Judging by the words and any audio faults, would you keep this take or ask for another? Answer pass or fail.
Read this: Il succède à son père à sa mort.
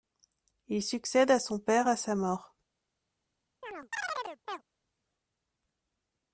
fail